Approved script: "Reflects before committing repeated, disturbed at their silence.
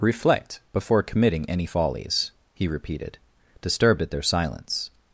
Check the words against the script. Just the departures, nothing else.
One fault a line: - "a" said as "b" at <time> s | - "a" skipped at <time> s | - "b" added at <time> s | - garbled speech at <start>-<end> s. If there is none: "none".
- "Reflects" said as "Reflect" at 0.0 s
- "any follies he" added at 1.5 s